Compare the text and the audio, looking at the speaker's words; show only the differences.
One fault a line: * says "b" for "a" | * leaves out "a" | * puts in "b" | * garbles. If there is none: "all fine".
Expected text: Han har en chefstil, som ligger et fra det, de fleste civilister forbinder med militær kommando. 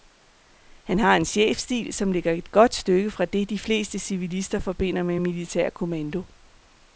* puts in "godt stykke"